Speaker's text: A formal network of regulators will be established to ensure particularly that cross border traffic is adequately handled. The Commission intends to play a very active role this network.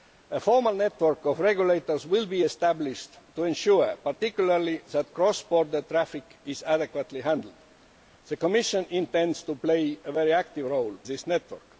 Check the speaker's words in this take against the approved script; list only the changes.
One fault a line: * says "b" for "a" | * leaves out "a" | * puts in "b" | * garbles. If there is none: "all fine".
all fine